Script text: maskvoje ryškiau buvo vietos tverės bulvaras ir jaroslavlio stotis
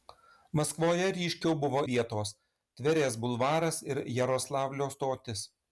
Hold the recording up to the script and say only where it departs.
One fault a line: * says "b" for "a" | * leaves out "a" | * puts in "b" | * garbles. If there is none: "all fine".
all fine